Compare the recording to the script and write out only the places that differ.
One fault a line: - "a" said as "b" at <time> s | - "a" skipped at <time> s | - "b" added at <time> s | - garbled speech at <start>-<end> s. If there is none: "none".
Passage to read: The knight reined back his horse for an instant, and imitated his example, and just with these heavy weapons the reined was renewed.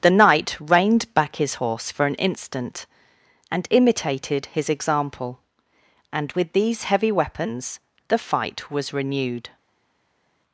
- "just" skipped at 6.3 s
- "reined" said as "fight" at 8.2 s